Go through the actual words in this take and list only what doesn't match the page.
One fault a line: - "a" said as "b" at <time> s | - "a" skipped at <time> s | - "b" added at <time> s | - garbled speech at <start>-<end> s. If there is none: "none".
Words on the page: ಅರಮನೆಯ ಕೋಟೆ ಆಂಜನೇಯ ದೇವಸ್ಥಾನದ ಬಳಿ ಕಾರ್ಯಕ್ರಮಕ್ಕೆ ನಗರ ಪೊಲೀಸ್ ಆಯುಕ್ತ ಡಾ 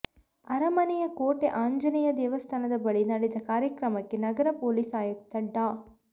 - "ನಡೆದ" added at 3.0 s